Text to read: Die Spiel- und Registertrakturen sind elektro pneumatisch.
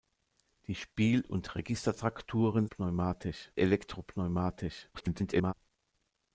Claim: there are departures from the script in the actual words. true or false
true